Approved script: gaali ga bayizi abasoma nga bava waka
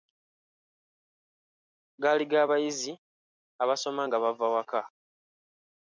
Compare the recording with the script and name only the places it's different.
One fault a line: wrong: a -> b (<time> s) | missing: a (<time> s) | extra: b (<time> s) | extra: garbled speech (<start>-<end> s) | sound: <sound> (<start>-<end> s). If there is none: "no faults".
no faults